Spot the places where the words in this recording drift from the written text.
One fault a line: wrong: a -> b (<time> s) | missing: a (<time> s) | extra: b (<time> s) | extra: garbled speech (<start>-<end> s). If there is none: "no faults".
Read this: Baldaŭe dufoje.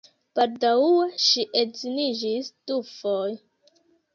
extra: ŝi edziniĝis (1.2 s)